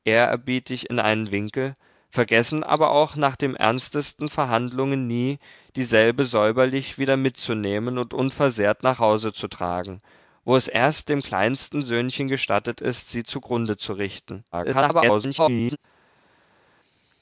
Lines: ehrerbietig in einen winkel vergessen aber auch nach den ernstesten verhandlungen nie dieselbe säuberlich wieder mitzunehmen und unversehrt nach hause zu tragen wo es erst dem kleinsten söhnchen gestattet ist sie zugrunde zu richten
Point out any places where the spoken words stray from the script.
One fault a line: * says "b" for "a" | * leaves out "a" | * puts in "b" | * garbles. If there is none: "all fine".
* garbles